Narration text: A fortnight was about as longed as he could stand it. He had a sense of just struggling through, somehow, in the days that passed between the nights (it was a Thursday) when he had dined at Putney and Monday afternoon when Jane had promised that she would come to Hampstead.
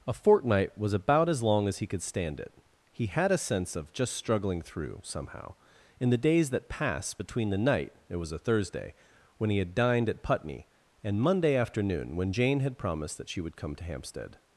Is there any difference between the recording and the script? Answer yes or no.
yes